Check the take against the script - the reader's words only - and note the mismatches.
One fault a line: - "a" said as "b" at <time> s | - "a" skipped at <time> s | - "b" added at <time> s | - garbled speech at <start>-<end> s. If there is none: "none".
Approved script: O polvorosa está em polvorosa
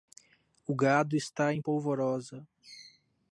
- "polvorosa" said as "gado" at 0.8 s